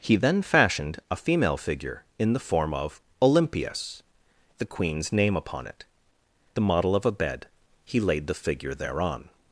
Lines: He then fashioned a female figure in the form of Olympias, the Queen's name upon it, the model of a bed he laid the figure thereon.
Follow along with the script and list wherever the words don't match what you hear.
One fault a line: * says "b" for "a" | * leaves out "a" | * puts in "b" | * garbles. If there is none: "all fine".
all fine